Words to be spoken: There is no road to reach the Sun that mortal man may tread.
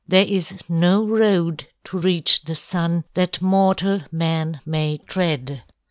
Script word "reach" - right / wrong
right